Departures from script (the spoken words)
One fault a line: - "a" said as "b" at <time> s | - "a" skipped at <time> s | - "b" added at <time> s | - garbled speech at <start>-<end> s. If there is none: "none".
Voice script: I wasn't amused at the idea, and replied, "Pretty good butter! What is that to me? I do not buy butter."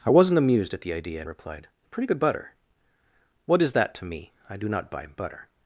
none